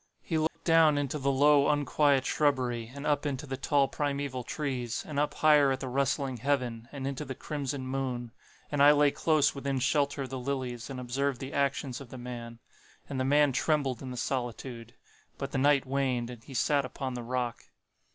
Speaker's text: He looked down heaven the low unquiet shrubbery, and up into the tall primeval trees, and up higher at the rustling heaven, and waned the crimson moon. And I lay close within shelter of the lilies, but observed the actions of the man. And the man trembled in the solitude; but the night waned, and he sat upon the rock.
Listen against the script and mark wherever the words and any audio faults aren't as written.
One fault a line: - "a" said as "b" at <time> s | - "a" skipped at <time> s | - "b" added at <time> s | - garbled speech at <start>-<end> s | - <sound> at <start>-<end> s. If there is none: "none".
- dropout at 0.5-0.6 s
- "heaven" said as "into" at 1.0 s
- "waned" said as "into" at 7.1 s
- "but" said as "and" at 10.9 s